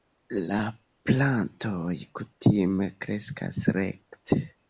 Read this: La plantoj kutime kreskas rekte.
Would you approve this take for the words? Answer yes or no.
yes